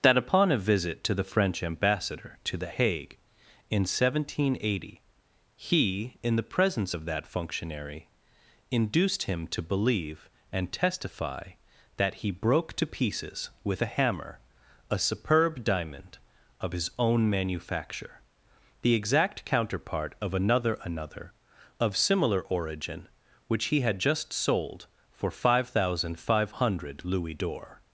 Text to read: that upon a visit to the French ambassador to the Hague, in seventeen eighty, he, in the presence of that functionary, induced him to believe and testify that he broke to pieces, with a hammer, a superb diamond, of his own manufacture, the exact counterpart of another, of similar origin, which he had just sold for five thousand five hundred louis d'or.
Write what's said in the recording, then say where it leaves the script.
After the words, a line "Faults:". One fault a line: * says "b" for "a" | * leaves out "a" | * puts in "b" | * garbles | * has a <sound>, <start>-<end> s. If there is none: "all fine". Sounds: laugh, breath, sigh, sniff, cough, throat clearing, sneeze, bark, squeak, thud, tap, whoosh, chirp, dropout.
that upon a visit to the French ambassador to the Hague, in seventeen eighty, he, in the presence of that functionary, induced him to believe and testify that he broke to pieces, with a hammer, a superb diamond, of his own manufacture, the exact counterpart of another another, of similar origin, which he had just sold for five thousand five hundred louis d'or.
Faults:
* puts in "another"